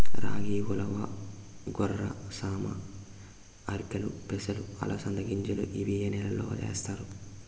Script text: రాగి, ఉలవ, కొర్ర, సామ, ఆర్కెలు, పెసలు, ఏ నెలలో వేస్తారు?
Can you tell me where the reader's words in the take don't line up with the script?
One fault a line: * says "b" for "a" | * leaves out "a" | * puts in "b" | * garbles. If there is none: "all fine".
* puts in "అలసంద గింజలు ఇవి"